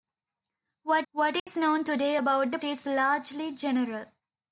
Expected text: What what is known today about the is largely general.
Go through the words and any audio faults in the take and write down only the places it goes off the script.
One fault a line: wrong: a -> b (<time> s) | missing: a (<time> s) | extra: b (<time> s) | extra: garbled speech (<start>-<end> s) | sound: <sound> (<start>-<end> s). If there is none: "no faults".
sound: dropout (1.4-1.5 s)